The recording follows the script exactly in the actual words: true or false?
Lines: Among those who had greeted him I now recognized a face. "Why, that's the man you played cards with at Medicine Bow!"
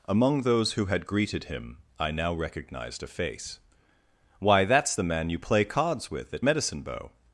false